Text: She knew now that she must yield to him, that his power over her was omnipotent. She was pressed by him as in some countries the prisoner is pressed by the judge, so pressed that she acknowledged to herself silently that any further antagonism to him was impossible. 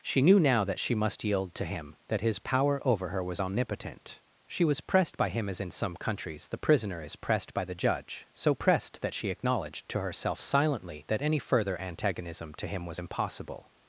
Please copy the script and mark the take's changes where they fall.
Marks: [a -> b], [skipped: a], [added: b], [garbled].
She knew now that she must yield to him, that his power over her was omnipotent. She was pressed by him as in some countries the prisoner is pressed by the judge, so pressed that she acknowledged to herself silently that any further antagonism to him was impossible.